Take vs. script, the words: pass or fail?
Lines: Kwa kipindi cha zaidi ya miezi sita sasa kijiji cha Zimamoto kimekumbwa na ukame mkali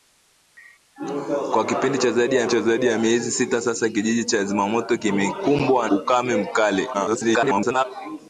fail